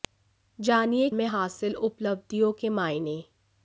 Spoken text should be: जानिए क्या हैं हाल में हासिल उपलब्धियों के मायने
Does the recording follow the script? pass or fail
fail